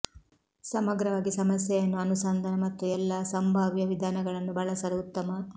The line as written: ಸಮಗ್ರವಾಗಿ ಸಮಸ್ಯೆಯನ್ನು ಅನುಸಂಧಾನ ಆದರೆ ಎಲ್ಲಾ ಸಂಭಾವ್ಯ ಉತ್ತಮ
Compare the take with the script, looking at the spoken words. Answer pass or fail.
fail